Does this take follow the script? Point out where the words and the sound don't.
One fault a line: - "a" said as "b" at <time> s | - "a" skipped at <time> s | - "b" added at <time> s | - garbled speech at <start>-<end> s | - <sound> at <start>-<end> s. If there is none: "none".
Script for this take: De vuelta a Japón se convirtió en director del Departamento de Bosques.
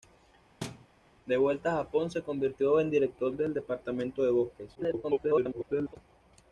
- thud at 0.6-0.9 s
- garbled speech at 4.7-6.0 s